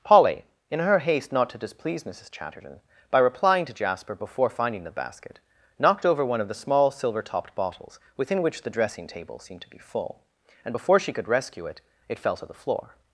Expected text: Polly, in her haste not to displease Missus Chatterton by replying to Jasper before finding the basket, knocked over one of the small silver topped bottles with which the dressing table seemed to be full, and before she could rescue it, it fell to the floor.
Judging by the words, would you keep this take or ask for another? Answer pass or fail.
fail